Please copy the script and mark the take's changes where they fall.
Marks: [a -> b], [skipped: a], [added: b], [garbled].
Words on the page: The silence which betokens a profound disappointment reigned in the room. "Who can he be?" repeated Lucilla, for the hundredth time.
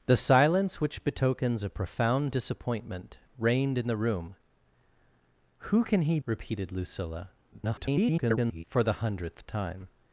The silence which betokens a profound disappointment reigned in the room. "Who can he [skipped: be?"] repeated Lucilla, [garbled] for the hundredth time.